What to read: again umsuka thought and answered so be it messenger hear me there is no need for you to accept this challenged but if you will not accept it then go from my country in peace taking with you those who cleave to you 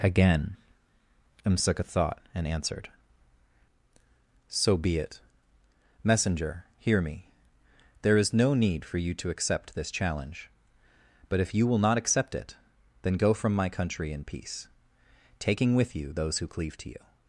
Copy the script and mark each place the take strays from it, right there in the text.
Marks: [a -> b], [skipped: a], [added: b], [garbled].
again umsuka thought and answered so be it messenger hear me there is no need for you to accept this [challenged -> challenge] but if you will not accept it then go from my country in peace taking with you those who cleave to you